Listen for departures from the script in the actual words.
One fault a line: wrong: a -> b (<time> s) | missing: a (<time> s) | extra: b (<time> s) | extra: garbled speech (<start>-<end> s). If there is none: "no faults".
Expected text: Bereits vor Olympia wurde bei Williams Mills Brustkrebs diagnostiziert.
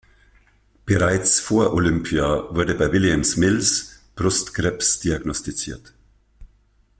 no faults